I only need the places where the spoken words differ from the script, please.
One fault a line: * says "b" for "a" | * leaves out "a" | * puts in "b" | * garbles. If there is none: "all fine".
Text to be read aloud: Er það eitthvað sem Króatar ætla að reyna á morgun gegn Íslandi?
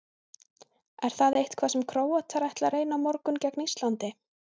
all fine